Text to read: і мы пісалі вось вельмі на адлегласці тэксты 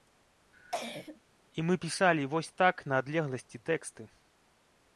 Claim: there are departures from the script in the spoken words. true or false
true